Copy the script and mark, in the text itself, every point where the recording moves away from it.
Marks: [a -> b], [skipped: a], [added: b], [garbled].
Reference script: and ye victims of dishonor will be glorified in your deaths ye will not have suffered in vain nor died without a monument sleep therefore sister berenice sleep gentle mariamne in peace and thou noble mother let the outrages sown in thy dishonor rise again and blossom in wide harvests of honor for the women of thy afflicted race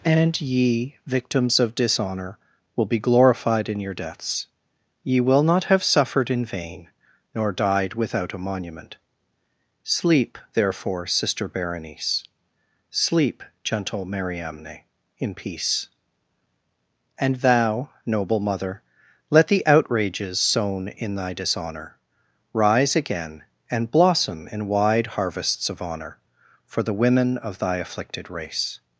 and ye victims of dishonor will be glorified in your deaths ye will not have suffered in vain nor died without a monument sleep therefore sister berenice sleep gentle mariamne in peace and thou noble mother let the outrages sown in thy dishonor rise again and blossom in wide harvests of honor for the women of thy afflicted race